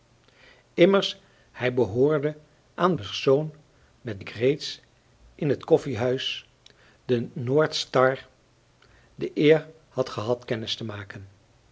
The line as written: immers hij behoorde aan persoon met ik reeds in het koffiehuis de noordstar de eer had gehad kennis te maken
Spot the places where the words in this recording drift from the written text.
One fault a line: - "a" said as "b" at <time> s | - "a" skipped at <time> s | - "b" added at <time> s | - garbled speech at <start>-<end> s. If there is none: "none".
none